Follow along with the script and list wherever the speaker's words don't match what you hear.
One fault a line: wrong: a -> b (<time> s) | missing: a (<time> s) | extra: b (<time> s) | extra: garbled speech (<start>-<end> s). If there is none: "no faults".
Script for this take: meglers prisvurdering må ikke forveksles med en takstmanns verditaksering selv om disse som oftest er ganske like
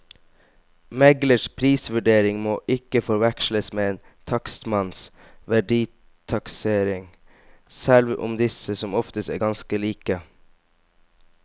no faults